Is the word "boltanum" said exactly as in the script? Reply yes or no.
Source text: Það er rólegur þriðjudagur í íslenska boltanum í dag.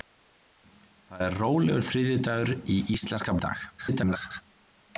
no